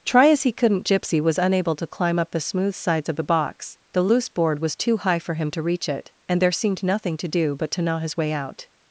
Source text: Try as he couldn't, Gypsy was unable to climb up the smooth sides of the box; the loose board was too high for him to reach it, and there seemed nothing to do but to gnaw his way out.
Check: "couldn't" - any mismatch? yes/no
no